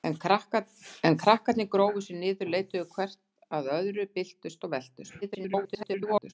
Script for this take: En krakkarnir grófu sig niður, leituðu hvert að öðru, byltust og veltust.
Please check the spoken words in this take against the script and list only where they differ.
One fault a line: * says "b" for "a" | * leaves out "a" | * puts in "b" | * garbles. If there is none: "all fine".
* garbles